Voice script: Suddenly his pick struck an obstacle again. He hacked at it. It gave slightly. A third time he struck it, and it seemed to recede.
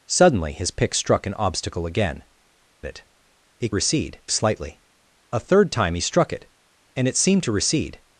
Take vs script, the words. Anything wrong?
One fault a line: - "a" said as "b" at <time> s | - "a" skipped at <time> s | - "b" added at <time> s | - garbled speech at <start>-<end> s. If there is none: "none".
- "He hacked at" skipped at 2.2 s
- "gave" said as "recede" at 3.7 s